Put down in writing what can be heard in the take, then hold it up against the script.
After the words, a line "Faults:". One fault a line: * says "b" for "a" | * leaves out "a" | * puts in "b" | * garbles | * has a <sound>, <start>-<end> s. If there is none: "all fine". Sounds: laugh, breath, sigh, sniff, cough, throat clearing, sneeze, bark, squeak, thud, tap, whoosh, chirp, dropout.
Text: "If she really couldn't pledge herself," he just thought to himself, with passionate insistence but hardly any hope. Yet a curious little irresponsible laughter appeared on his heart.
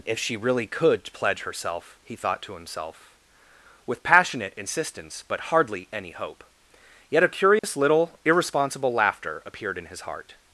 "If she really could pledge herself," he thought to himself, with passionate insistence but hardly any hope. Yet a curious little irresponsible laughter appeared in his heart.
Faults:
* says "could" for "couldn't"
* leaves out "just"
* has a dropout, 7.6-7.6 s
* says "in" for "on"